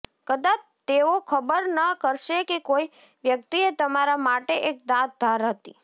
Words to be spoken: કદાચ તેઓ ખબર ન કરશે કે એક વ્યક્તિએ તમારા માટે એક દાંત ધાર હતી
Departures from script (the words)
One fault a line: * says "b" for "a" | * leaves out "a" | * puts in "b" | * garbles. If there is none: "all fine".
* says "કોઈ" for "એક"